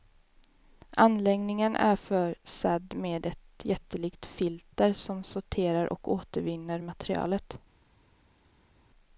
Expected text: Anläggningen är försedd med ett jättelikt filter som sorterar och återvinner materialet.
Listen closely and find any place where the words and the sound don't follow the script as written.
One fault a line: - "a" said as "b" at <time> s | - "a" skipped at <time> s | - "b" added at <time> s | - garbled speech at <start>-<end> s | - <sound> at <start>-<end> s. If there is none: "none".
none